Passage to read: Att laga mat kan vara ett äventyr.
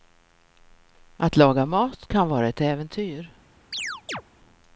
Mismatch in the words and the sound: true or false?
true